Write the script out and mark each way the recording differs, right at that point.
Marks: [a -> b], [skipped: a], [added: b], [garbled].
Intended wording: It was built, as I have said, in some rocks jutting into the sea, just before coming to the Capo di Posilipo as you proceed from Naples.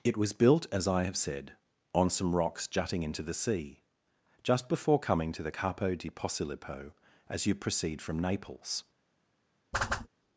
It was built, as I have said, [in -> on] some rocks jutting into the sea, just before coming to the Capo di Posilipo as you proceed from Naples.